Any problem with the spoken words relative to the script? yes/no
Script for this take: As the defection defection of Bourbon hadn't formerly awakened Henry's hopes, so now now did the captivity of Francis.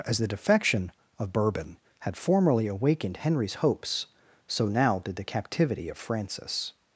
yes